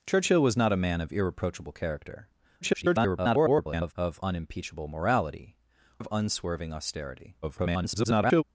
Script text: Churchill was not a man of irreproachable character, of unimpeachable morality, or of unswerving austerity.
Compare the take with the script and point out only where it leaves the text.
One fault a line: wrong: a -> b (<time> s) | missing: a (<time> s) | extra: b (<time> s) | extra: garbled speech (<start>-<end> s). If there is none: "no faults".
extra: garbled speech (2.6-3.9 s)
missing: or (5.6 s)
extra: garbled speech (7.4-8.4 s)